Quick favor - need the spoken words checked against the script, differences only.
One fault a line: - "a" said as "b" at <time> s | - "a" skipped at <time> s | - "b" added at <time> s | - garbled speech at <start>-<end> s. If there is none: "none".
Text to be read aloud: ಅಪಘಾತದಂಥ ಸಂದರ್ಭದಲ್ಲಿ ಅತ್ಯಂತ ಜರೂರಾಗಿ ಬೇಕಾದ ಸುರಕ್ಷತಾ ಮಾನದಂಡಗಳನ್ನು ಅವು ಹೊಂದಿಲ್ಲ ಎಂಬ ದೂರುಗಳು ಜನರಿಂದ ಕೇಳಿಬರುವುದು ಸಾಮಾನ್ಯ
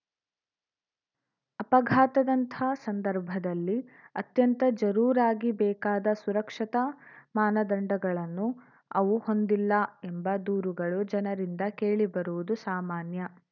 none